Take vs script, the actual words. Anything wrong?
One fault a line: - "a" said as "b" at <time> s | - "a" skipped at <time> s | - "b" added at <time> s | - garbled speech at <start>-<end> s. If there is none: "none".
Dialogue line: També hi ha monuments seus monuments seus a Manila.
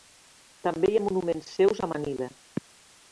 - "monuments seus" skipped at 1.8 s